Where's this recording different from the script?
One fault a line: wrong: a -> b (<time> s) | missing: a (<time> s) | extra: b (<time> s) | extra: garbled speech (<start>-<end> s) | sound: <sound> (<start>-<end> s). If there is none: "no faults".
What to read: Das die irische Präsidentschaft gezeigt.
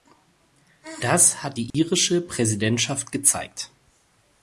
extra: hat (1.4 s)
sound: dropout (1.7-1.7 s)